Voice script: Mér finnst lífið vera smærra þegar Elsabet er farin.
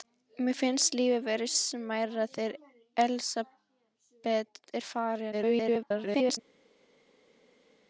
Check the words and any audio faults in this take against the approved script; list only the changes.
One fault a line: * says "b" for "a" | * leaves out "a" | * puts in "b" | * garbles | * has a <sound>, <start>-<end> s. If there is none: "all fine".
* garbles